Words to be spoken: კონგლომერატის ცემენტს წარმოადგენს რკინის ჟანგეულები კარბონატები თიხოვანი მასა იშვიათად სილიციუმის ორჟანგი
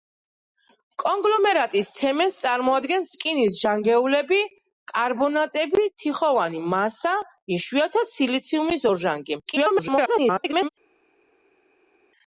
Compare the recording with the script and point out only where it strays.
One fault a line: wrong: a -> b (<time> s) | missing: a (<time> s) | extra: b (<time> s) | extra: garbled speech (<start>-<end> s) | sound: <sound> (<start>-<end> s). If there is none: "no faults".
extra: garbled speech (9.5-10.7 s)